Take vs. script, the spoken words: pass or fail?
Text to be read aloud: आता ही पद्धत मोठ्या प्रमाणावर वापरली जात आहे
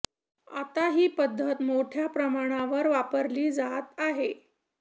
pass